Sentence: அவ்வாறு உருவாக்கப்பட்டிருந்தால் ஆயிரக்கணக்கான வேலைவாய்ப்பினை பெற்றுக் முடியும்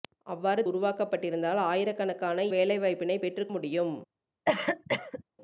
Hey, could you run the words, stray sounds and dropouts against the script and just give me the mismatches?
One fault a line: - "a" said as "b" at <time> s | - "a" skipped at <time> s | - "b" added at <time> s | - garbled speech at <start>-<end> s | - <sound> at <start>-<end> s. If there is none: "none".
- cough at 4.5-5.2 s